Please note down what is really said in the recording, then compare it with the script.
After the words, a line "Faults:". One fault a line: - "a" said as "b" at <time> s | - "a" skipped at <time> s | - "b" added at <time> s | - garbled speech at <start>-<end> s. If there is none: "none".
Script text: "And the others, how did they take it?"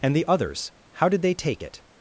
"And the others, how did they take it?"
Faults:
none